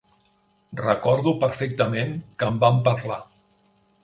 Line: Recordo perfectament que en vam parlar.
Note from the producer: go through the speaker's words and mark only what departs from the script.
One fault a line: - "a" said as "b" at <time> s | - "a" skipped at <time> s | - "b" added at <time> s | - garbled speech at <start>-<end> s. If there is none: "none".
none